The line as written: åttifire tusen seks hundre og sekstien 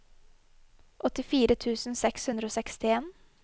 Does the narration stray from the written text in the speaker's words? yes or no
no